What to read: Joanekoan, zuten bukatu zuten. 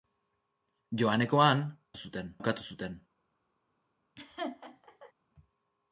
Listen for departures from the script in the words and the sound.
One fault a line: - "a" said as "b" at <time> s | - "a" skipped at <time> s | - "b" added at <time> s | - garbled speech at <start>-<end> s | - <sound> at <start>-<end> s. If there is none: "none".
- laugh at 4.2-5.1 s